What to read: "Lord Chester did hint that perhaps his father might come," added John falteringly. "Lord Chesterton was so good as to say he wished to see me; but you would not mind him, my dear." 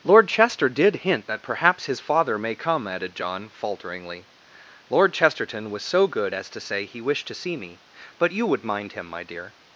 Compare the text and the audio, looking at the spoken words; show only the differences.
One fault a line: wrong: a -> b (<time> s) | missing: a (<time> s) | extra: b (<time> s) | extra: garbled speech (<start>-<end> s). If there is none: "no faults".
wrong: might -> may (2.4 s)
missing: not (8.6 s)